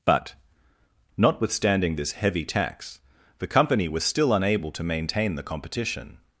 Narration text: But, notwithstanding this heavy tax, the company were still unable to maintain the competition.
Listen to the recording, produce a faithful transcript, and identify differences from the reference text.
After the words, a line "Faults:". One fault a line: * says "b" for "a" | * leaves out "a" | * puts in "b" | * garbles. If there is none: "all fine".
But, notwithstanding this heavy tax, the company was still unable to maintain the competition.
Faults:
* says "was" for "were"